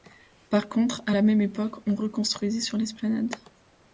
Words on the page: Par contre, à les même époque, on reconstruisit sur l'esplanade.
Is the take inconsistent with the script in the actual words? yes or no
yes